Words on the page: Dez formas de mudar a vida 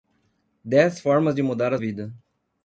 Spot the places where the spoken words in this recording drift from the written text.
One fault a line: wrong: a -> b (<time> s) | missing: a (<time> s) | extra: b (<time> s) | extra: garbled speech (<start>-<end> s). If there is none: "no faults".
no faults